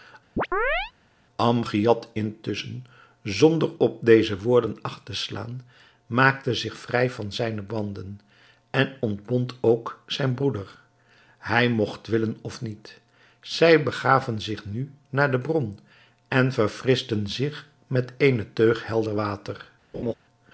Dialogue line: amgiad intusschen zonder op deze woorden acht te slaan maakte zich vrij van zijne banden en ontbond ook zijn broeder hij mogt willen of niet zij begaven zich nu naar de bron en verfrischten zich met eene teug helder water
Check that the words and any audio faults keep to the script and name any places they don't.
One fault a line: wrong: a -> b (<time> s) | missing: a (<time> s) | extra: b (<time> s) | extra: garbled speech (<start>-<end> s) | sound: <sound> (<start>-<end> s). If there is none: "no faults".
sound: chirp (0.4-0.9 s)
sound: laugh (19.9-20.1 s)